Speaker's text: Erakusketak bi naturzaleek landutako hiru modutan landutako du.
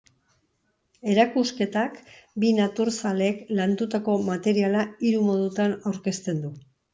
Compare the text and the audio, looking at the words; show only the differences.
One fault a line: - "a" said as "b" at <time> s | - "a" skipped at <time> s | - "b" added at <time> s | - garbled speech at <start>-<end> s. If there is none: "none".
- "materiala" added at 4.3 s
- "landutako" said as "aurkezten" at 5.9 s